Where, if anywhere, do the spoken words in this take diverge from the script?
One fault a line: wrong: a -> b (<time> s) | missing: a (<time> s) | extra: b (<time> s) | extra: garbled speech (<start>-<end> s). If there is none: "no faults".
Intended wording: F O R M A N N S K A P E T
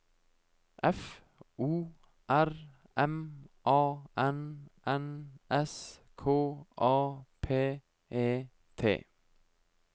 no faults